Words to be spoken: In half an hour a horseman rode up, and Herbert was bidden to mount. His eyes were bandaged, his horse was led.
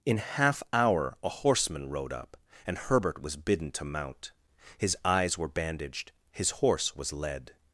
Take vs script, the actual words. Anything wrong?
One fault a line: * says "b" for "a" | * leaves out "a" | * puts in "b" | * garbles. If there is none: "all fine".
* leaves out "an"